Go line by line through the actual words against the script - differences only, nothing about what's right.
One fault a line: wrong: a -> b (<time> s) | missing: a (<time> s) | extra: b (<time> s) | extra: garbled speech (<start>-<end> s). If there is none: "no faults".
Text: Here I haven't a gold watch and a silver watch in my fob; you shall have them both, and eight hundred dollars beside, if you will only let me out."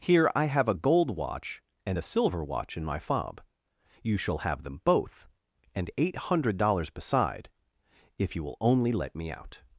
wrong: haven't -> have (0.5 s)